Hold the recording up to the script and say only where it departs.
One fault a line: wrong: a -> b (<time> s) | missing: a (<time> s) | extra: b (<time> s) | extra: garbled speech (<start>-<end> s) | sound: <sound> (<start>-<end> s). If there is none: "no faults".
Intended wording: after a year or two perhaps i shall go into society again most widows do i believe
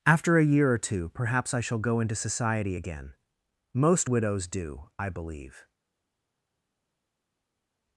no faults